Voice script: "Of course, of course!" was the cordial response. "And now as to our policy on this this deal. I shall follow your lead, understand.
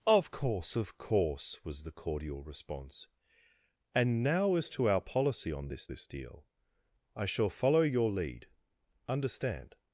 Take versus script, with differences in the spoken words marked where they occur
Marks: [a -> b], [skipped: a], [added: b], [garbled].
"Of course, of course!" was the cordial response. "And now as to our policy on this this deal. I shall follow your lead, understand.